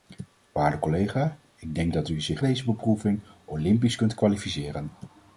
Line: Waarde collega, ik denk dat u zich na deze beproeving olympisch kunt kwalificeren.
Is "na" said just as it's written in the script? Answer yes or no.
no